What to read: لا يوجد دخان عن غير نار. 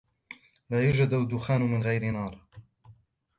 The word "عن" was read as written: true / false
false